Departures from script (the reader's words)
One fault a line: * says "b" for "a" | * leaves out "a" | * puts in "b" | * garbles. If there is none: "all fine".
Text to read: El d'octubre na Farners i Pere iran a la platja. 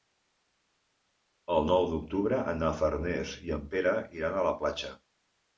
* puts in "nou"
* puts in "en"